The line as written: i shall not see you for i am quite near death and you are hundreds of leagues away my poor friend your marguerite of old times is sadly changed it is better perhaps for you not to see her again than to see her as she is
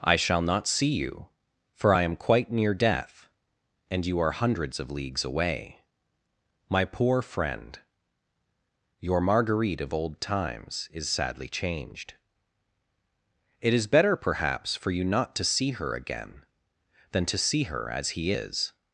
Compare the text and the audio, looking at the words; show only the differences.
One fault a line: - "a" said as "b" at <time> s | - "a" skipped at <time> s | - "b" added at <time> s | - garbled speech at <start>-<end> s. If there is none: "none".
- "she" said as "he" at 18.1 s